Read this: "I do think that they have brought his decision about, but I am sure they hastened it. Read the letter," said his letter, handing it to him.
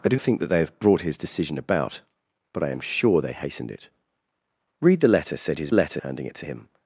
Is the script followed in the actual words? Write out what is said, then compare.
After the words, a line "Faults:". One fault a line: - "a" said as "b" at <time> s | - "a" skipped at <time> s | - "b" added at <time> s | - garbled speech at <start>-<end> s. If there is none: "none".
"I do think that they have brought his decision about, but I am sure they hastened it. Read the letter," said his letter, handing it to him.
Faults:
none